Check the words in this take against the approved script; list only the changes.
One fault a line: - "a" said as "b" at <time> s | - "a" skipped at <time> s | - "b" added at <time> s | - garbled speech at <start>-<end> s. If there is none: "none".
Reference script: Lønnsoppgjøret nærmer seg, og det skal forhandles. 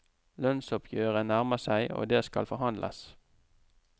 none